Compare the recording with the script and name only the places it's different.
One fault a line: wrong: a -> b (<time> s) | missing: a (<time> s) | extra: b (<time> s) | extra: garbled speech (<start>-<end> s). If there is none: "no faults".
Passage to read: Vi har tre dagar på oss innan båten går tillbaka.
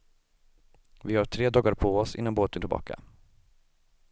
missing: går (2.6 s)